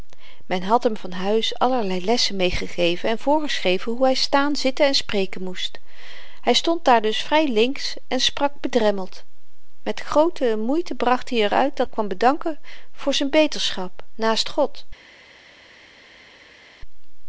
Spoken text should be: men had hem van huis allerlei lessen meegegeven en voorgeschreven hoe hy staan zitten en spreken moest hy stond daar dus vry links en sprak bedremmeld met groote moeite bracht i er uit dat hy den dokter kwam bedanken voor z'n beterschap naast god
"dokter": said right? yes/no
no